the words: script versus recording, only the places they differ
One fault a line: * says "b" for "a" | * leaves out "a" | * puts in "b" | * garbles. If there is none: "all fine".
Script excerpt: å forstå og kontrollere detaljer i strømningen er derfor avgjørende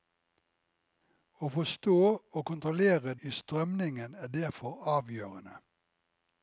* leaves out "detaljer"